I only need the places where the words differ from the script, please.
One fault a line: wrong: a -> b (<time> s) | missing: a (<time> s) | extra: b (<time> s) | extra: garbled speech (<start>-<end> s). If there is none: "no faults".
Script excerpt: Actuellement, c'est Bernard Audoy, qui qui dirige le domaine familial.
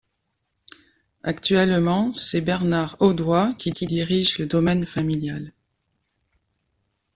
no faults